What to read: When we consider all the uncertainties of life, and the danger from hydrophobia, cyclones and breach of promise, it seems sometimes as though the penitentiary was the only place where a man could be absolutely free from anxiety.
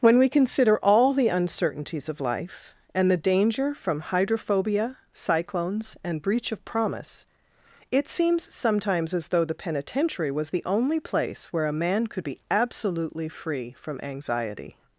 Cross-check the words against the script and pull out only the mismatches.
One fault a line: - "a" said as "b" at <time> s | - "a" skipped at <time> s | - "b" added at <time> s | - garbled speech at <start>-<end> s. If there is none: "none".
none